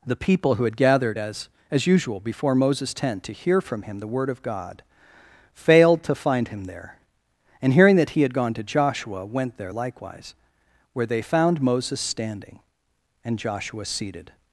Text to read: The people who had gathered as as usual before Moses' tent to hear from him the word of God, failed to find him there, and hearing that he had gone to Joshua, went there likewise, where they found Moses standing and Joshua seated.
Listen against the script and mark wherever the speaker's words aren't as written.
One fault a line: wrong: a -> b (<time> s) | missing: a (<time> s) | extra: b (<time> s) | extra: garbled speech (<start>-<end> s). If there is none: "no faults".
no faults